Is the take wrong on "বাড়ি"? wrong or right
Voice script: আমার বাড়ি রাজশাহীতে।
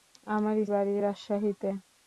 right